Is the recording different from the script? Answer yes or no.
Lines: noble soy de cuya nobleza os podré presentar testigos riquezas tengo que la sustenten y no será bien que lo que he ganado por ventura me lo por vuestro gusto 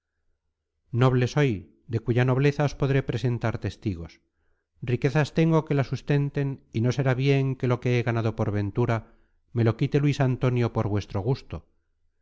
yes